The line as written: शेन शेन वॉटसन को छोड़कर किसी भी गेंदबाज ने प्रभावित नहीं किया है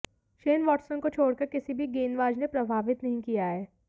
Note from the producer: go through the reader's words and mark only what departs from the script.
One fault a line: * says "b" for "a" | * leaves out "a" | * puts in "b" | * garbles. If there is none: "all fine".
* leaves out "शेन"